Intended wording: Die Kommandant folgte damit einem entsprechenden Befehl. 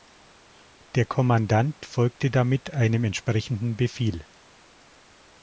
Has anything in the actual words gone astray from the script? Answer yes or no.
yes